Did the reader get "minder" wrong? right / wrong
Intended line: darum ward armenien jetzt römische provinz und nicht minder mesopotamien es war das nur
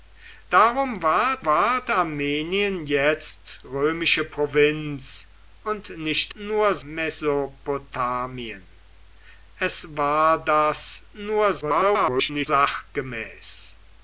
wrong